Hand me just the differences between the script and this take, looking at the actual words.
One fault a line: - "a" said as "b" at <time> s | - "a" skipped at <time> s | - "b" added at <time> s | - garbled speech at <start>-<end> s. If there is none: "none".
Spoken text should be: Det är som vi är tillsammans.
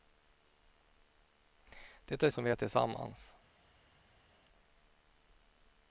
none